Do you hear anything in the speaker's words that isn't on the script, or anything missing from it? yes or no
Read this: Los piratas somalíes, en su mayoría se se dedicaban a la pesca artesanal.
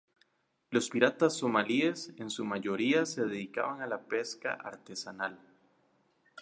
yes